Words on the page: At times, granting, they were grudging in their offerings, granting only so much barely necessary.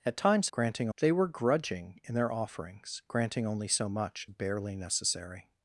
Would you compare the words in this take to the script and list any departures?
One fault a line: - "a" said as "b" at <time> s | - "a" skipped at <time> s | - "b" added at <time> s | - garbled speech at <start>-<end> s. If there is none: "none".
none